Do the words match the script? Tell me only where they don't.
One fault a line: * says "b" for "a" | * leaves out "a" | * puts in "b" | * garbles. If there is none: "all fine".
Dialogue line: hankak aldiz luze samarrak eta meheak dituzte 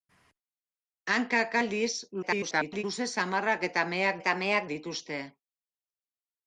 * garbles
* puts in "eta meheak"